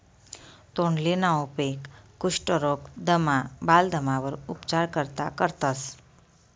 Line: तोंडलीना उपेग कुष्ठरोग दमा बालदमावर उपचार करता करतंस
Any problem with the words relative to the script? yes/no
no